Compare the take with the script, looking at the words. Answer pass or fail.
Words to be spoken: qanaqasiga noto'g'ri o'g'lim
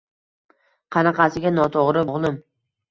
pass